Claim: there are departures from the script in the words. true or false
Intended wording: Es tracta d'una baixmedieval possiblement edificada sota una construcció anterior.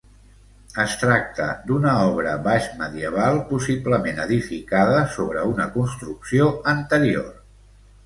true